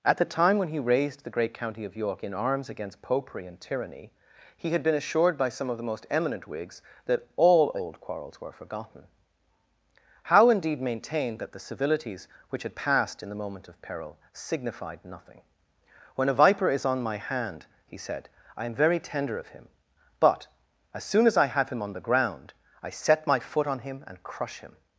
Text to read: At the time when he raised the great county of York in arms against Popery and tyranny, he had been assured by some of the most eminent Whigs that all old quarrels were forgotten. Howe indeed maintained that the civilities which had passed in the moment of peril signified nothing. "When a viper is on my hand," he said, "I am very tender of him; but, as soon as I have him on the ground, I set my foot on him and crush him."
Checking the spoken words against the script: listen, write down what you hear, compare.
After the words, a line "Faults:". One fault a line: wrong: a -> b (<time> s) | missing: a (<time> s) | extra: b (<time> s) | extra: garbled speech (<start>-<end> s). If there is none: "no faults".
At the time when he raised the great county of York in arms against Popery and tyranny, he had been assured by some of the most eminent Whigs that all old quarrels were forgotten. Howe indeed maintained that the civilities which had passed in the moment of peril signified nothing. "When a viper is on my hand," he said, "I am very tender of him; but, as soon as I have him on the ground, I set my foot on him and crush him."
Faults:
no faults